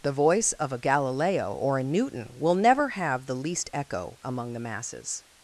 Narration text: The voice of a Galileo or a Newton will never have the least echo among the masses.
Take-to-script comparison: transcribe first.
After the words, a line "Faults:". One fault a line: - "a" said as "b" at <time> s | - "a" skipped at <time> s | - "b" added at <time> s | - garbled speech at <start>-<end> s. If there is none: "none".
The voice of a Galileo or a Newton will never have the least echo among the masses.
Faults:
none